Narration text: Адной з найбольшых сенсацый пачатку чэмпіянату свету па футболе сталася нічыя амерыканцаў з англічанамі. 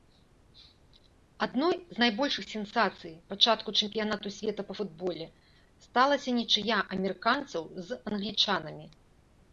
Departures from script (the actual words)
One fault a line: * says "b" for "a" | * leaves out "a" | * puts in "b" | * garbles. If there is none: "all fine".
all fine